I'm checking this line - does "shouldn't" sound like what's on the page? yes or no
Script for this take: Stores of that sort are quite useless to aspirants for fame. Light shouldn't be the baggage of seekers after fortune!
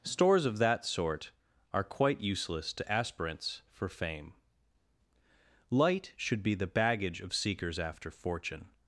no